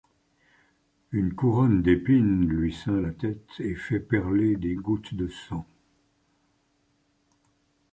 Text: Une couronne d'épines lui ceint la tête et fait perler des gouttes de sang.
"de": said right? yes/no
yes